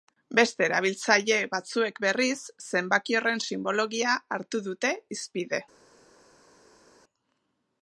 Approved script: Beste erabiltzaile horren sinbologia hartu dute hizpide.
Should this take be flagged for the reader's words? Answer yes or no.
yes